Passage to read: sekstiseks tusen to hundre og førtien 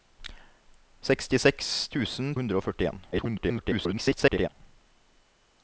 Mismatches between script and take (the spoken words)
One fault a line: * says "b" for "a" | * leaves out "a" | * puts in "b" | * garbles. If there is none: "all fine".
* leaves out "to"
* garbles